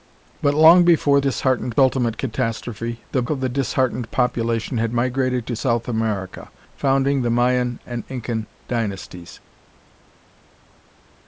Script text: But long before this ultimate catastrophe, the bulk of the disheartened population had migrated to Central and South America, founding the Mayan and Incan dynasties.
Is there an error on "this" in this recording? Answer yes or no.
yes